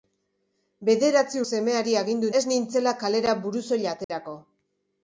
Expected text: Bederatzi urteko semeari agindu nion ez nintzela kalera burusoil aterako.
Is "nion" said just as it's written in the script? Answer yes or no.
no